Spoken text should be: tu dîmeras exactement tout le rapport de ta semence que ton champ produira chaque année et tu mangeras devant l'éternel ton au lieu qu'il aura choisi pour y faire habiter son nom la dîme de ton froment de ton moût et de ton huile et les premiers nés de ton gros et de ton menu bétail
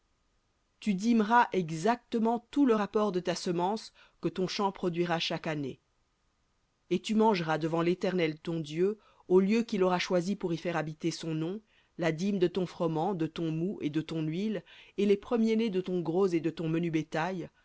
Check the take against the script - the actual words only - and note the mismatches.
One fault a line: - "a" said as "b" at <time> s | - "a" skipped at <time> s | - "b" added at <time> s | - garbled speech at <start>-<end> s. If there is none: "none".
- "dieu" added at 8.6 s